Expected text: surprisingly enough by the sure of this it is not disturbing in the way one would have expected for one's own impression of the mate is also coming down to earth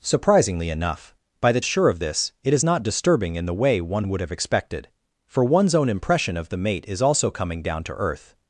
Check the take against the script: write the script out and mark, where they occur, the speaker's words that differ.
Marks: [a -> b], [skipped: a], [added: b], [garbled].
surprisingly enough by the sure of this it is not disturbing in the way one would have expected for one's own impression of the mate is also coming down to earth